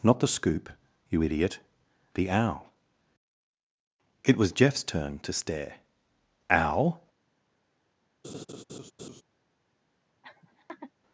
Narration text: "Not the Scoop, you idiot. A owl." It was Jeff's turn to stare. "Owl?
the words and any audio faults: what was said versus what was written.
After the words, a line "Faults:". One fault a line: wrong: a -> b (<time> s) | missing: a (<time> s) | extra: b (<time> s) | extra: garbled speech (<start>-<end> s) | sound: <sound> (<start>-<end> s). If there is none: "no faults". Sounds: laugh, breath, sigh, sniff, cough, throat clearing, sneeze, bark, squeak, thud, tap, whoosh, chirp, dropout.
"Not the Scoop, you idiot. The owl." It was Jeff's turn to stare. "Owl?
Faults:
wrong: A -> The (2.1 s)
sound: laugh (8.2-9.2 s)
sound: laugh (10.2-10.9 s)